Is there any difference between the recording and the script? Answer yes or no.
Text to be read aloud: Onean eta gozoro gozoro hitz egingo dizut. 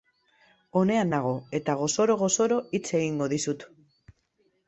yes